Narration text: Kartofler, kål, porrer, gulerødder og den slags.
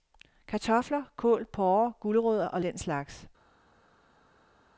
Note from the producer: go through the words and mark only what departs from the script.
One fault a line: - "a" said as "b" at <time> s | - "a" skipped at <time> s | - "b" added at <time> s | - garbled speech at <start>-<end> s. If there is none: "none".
none